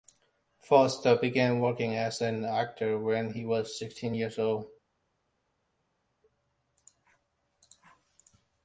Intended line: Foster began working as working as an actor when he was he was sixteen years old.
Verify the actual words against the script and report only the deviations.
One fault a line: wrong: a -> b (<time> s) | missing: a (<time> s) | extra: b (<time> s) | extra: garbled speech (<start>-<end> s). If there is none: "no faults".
missing: working as (2.2 s)
missing: he was (3.8 s)